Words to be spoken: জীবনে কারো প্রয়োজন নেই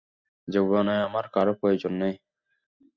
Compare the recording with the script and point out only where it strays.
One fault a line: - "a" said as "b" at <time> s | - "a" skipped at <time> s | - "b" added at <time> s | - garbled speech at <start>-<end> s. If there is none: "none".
- "আমার" added at 1.1 s